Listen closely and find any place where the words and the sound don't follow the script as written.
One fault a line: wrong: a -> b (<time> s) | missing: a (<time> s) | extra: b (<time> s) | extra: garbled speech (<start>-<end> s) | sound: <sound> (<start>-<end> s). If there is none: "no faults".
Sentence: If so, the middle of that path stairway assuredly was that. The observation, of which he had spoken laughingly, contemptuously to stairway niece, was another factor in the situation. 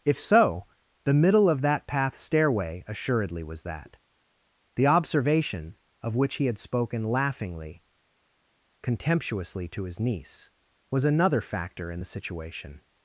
wrong: stairway -> his (9.8 s)